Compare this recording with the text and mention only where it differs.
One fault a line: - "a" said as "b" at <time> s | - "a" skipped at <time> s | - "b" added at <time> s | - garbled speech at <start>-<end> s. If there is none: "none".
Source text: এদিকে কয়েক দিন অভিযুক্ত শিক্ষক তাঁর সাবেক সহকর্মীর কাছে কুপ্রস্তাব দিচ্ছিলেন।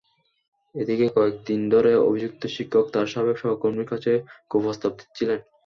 - "ধরে" added at 1.7 s